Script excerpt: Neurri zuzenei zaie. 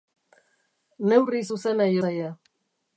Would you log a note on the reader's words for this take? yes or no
no